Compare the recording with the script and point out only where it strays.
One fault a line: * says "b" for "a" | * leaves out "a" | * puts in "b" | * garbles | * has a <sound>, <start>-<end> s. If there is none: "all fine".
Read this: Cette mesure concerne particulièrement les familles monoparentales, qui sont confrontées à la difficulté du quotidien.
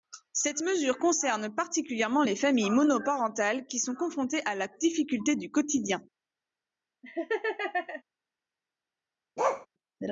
* has a laugh, 7.0-8.0 s
* has a bark, 9.4-9.7 s